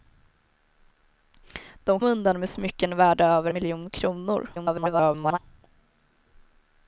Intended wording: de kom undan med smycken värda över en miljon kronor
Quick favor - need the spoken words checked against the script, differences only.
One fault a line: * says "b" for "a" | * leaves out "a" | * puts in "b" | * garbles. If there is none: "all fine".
* leaves out "kom"
* leaves out "en"
* garbles